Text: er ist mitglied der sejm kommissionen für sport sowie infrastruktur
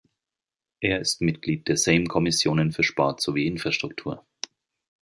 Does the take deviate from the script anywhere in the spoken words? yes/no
no